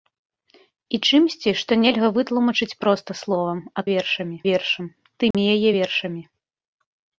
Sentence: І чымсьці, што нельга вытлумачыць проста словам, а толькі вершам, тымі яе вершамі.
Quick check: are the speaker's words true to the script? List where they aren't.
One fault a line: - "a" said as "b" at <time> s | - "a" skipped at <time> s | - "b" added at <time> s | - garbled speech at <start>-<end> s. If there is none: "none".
- "толькі" said as "вершамі" at 3.9 s